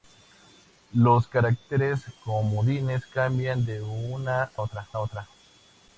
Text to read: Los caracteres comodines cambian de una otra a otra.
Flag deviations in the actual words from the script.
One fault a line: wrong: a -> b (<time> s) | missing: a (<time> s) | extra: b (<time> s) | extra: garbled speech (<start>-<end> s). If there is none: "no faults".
no faults